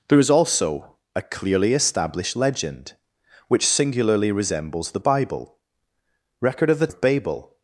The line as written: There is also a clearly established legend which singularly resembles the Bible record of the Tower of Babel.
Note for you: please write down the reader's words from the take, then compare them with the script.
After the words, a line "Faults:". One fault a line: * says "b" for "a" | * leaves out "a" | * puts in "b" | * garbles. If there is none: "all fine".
There is also a clearly established legend which singularly resembles the Bible record of the Of Babel.
Faults:
* leaves out "Tower"